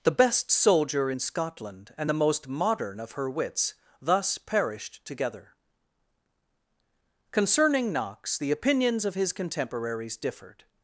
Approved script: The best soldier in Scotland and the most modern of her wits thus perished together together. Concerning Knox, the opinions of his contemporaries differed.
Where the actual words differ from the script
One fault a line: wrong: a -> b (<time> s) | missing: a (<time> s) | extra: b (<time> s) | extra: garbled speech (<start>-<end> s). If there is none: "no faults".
missing: together (5.5 s)